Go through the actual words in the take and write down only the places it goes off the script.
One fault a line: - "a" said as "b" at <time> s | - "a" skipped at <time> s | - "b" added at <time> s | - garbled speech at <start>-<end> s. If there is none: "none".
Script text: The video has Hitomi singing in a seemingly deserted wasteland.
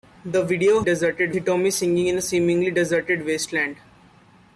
- "has" said as "deserted" at 0.8 s